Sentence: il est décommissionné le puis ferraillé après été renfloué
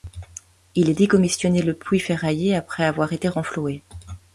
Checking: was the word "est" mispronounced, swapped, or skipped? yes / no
no